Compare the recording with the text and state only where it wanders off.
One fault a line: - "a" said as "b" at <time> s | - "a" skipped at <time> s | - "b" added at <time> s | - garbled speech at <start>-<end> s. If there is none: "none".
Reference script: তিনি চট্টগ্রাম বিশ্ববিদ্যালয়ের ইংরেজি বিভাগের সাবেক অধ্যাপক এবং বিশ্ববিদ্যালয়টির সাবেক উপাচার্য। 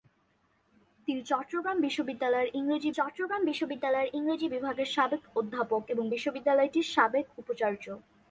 - "চট্টগ্রাম বিশ্ববিদ্যালয়ের ইংরেজি" added at 2.9 s